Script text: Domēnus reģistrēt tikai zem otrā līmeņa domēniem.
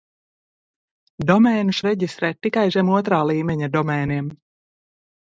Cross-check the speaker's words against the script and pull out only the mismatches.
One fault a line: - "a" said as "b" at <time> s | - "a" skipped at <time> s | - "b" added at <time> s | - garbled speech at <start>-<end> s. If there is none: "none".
none